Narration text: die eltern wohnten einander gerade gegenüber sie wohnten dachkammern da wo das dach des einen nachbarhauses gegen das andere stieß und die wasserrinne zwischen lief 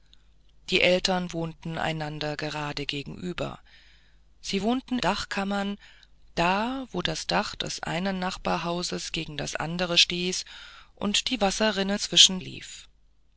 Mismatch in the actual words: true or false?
false